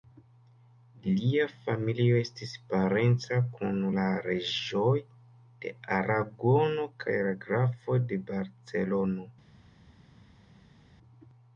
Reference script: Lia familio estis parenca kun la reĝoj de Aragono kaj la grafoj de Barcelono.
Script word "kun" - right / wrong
right